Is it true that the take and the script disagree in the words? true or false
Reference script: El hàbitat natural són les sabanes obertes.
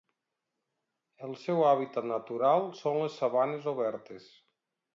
true